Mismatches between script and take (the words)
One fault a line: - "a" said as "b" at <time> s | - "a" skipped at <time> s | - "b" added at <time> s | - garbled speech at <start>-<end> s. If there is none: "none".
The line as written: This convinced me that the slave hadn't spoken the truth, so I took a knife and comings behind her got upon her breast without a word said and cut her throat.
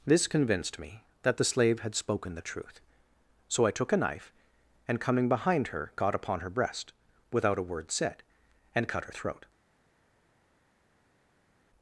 - "hadn't" said as "had" at 1.8 s
- "comings" said as "coming" at 5.0 s